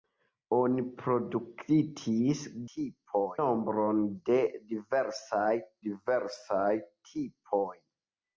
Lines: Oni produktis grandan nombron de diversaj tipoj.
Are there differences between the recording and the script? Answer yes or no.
yes